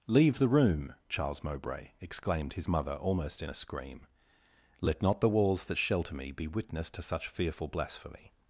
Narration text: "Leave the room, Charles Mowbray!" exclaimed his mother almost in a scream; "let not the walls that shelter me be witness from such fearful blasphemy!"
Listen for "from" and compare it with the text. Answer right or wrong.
wrong